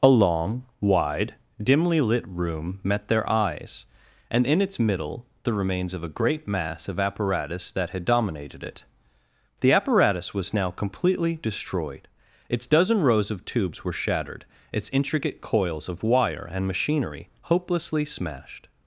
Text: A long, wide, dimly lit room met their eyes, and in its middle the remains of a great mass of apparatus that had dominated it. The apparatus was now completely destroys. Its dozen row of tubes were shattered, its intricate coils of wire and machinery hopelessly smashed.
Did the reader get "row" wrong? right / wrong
wrong